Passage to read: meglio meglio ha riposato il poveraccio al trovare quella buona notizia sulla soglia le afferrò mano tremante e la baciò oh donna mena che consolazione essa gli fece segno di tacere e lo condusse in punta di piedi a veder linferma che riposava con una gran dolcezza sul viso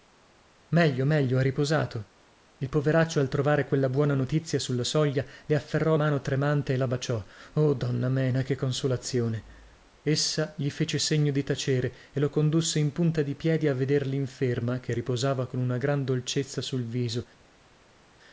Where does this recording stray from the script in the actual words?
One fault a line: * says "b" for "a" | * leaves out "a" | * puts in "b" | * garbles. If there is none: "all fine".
all fine